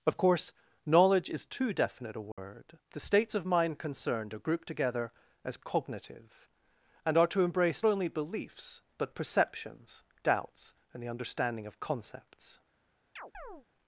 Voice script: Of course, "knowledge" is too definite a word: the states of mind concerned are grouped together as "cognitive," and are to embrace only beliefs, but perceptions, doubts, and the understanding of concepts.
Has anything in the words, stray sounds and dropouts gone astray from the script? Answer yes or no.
yes